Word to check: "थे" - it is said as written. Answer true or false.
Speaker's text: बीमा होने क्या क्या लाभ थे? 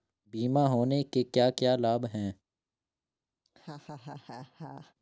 false